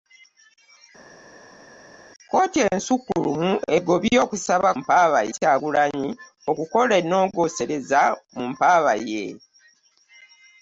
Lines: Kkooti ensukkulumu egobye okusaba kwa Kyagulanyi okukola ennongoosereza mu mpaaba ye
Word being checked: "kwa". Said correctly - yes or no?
no